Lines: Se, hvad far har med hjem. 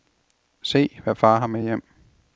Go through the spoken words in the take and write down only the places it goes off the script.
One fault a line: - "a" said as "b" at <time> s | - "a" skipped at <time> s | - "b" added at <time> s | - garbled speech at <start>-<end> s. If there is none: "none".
none